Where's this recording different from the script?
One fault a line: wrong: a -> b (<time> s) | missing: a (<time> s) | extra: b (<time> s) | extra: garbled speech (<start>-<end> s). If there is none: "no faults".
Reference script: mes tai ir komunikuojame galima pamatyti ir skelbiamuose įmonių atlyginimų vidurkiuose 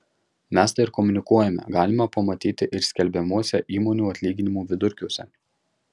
no faults